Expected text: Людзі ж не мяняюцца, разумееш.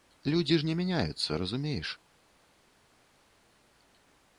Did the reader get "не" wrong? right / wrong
right